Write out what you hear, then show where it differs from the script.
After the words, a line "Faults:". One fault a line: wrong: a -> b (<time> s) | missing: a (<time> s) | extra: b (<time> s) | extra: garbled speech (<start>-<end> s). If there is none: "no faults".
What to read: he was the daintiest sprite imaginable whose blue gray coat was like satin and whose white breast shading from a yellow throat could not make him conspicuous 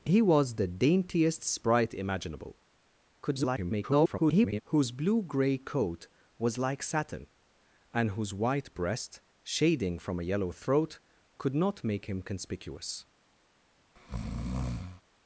he was the daintiest sprite imaginable [garbled] whose blue gray coat was like satin and whose white breast shading from a yellow throat could not make him conspicuous
Faults:
extra: garbled speech (3.2-4.6 s)